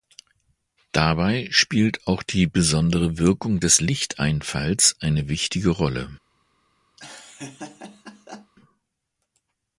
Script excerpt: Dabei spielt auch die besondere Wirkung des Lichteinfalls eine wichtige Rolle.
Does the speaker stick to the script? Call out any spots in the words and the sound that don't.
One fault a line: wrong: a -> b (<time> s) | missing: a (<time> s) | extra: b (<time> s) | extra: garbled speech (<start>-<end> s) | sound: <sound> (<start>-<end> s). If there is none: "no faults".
sound: laugh (7.0-8.5 s)